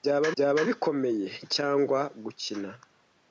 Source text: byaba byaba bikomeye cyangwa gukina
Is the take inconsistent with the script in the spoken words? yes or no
no